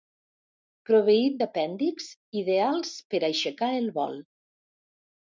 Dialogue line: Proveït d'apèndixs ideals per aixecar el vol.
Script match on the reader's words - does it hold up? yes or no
yes